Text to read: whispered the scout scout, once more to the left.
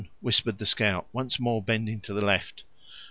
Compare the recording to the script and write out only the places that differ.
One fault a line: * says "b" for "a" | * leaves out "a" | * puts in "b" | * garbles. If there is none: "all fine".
* leaves out "scout"
* puts in "bending"